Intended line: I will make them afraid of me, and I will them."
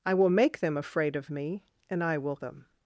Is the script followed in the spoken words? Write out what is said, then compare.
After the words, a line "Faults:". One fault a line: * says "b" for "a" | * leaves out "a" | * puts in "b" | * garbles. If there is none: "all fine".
I will make them afraid of me, and I will them."
Faults:
all fine